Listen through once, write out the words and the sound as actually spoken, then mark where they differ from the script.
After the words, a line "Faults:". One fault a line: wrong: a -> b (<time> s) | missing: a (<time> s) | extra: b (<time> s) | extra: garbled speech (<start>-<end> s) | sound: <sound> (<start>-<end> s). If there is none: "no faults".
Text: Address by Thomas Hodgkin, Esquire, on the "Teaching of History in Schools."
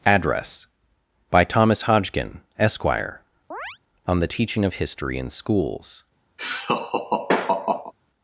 Address by Thomas Hodgkin, Esquire, on the "Teaching of History in Schools."
Faults:
sound: chirp (3.5-3.8 s)
sound: laugh (6.4-7.9 s)